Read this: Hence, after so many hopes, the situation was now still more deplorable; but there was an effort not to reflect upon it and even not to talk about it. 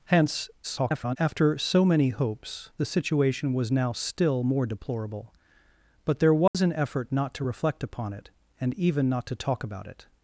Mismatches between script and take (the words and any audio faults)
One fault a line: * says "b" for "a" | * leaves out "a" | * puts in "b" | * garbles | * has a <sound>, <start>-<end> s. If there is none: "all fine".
* garbles
* has a dropout, 6.5-6.5 s